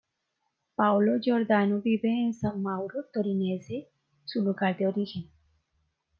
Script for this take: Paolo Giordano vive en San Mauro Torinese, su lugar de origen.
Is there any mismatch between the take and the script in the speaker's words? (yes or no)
no